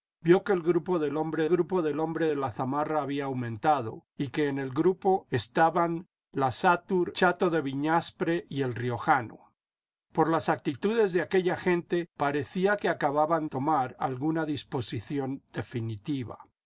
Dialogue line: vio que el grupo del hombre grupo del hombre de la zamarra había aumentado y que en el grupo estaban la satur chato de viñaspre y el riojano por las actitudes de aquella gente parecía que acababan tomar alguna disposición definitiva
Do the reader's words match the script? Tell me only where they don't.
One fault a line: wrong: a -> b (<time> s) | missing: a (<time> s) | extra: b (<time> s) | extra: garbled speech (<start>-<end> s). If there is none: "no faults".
no faults